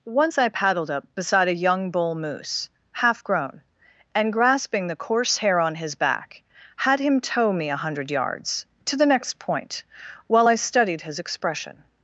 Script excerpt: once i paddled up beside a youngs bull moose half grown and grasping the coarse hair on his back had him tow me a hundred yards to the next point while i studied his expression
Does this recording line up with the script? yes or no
no